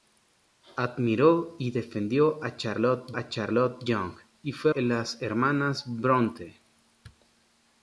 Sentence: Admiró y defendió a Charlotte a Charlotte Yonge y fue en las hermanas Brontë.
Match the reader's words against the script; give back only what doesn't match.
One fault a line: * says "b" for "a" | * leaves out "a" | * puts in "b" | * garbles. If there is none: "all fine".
all fine